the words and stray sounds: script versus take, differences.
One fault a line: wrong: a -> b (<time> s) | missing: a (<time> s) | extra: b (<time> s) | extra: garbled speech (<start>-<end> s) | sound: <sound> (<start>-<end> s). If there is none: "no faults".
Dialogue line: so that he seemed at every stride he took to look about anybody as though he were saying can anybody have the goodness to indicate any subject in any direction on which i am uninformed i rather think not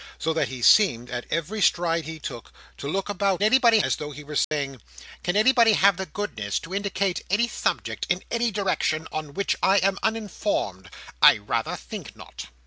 sound: dropout (4.4-4.5 s)